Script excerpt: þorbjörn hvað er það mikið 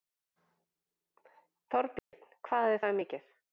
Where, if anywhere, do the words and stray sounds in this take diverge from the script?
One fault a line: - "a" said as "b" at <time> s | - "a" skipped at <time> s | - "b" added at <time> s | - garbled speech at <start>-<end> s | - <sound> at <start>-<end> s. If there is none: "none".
- dropout at 2.0-2.1 s